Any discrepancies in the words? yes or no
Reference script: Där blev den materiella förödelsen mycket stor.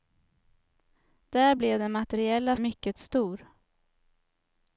yes